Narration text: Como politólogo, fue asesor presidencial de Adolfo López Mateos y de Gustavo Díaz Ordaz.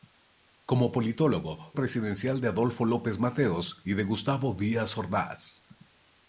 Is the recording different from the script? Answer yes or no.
yes